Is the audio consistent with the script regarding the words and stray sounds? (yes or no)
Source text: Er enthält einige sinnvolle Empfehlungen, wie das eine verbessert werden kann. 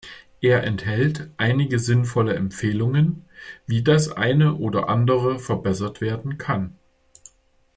no